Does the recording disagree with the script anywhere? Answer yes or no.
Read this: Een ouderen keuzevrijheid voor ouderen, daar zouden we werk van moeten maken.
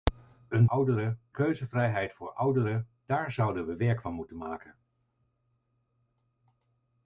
no